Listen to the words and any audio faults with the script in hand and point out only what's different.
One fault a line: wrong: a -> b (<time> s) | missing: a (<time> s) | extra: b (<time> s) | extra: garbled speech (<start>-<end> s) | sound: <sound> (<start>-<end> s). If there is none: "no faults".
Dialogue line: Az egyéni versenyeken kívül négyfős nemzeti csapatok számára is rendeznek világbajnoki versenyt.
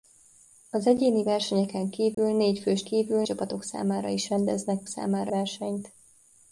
sound: dropout (2.1-2.2 s)
wrong: nemzeti -> kívül (2.8 s)
wrong: világbajnoki -> számára (4.9 s)